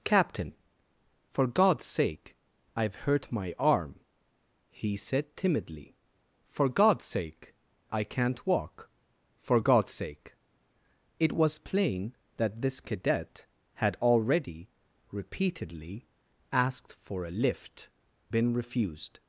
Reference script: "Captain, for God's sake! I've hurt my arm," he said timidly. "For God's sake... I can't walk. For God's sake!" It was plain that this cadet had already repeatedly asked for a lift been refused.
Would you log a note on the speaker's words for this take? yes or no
no